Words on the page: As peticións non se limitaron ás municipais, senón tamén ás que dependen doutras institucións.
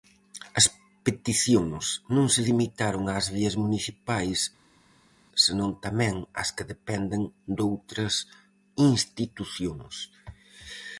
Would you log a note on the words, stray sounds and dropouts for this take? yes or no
yes